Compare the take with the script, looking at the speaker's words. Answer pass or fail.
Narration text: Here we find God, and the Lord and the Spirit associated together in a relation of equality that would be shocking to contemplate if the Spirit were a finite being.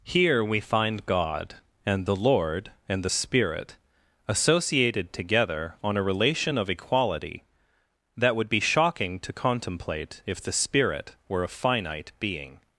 fail